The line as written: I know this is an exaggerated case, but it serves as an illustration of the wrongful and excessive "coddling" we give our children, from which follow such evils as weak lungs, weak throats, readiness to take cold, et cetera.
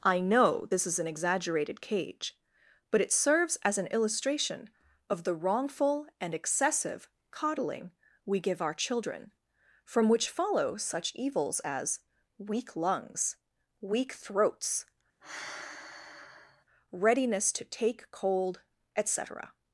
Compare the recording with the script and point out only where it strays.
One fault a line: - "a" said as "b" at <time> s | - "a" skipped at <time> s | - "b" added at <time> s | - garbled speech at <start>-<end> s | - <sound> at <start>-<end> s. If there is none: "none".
- "case" said as "cage" at 1.8 s
- sigh at 15.2-16.6 s